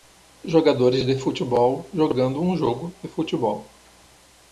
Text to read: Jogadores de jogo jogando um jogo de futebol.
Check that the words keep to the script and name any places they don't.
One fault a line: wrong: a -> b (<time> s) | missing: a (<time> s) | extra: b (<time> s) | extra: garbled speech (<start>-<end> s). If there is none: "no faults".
wrong: jogo -> futebol (1.1 s)